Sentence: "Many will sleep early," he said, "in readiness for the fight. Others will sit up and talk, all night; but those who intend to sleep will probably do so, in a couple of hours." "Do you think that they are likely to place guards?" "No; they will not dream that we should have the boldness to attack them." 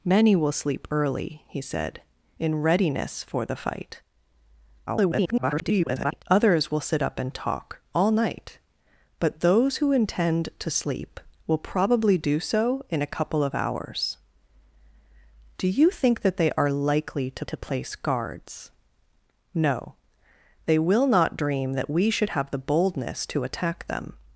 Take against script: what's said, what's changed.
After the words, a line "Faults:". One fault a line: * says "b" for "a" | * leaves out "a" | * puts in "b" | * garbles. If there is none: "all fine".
"Many will sleep early," he said, "in readiness for the fight. [garbled] Others will sit up and talk, all night; but those who intend to sleep will probably do so, in a couple of hours." "Do you think that they are likely to to place guards?" "No; they will not dream that we should have the boldness to attack them."
Faults:
* garbles
* puts in "to"